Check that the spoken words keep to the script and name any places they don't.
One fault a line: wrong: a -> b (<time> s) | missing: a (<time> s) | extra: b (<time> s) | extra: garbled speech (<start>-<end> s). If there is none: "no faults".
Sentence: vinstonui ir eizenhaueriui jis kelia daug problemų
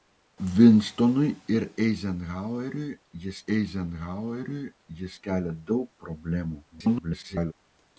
extra: eizenhaueriui jis (3.6 s)
extra: garbled speech (6.7-7.5 s)